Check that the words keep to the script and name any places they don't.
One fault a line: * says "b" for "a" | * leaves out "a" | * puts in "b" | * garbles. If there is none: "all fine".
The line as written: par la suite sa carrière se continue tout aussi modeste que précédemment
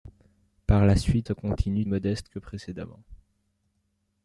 * leaves out "sa carrière"
* leaves out "tout aussi"